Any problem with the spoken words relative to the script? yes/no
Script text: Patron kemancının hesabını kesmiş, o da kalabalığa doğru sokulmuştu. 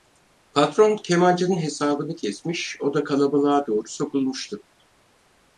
no